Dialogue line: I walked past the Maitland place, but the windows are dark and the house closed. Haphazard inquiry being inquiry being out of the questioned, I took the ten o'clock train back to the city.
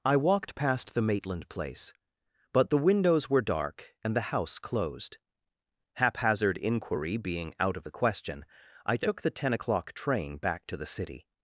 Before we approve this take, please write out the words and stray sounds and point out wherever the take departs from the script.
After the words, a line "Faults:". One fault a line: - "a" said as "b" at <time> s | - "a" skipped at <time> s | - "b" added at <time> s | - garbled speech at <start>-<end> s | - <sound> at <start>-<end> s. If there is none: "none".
I walked past the Maitland place, but the windows were dark and the house closed. Haphazard inquiry being out of the question, I took the ten o'clock train back to the city.
Faults:
- "are" said as "were" at 3.3 s
- "inquiry being" skipped at 7.5 s
- "questioned" said as "question" at 7.9 s